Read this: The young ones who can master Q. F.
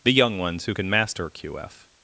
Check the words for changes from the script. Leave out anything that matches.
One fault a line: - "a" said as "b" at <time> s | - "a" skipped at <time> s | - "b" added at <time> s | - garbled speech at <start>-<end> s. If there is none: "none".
none